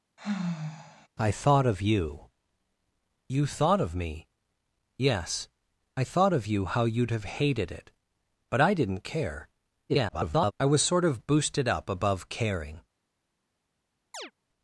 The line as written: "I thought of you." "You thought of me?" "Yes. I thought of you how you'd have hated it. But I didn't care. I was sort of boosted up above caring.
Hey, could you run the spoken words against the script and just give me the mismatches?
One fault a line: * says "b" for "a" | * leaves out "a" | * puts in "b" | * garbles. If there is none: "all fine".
* garbles